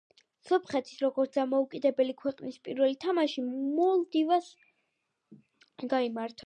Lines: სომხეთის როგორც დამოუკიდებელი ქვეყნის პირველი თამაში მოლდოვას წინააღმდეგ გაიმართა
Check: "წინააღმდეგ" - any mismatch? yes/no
yes